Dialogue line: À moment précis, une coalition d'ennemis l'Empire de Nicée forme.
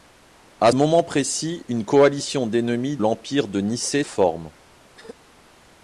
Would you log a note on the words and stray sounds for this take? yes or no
yes